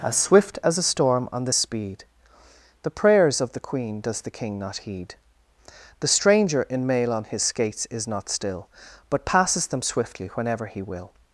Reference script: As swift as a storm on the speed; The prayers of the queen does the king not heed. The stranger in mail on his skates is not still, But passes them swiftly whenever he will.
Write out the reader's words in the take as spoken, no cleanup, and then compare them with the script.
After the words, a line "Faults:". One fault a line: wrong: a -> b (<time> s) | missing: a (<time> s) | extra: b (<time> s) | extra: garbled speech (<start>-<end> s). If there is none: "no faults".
As swift as a storm on the speed; The prayers of the queen does the king not heed. The stranger in mail on his skates is not still, But passes them swiftly whenever he will.
Faults:
no faults